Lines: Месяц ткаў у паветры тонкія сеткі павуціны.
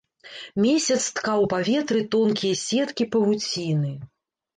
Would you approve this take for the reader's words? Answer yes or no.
yes